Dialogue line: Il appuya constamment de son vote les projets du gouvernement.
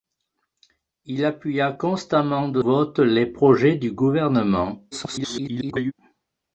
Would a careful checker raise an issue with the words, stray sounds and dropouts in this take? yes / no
yes